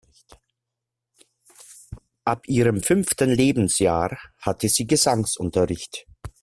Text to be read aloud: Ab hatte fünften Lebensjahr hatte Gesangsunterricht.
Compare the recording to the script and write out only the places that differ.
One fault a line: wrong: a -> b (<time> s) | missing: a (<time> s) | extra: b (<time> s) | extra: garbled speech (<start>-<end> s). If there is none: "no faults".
wrong: hatte -> ihrem (2.5 s)
extra: sie (4.7 s)